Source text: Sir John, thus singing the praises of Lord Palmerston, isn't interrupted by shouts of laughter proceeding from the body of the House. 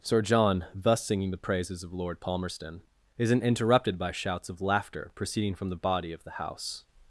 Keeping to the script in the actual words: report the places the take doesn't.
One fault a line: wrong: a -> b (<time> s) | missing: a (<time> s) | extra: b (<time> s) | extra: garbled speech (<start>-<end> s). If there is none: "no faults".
no faults